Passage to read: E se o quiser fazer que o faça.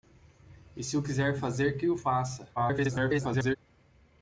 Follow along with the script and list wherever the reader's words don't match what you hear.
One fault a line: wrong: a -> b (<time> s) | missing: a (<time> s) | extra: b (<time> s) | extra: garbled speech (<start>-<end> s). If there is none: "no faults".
extra: garbled speech (2.6-3.6 s)